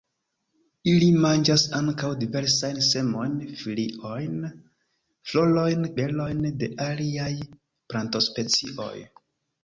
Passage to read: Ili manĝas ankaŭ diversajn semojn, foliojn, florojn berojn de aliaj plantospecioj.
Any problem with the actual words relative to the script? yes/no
no